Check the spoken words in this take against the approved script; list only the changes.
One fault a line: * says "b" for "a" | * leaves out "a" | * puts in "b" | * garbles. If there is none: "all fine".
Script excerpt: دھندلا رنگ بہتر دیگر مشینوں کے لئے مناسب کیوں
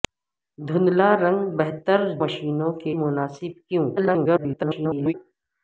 * leaves out "دیگر"
* leaves out "لئے"
* garbles